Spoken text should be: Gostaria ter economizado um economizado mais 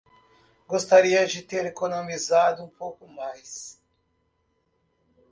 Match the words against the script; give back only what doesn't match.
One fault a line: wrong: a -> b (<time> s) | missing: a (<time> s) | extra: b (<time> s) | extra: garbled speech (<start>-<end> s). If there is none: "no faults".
extra: de (1.3 s)
wrong: economizado -> pouco (2.7 s)